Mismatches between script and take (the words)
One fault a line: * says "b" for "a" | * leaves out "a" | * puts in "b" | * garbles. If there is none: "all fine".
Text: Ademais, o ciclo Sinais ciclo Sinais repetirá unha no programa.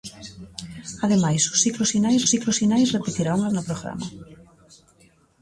all fine